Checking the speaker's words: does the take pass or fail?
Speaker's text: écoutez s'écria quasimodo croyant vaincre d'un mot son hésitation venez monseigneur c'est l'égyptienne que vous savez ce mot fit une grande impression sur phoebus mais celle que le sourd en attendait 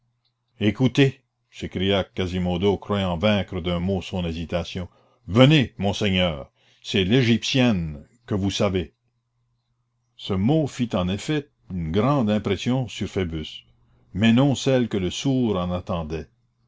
fail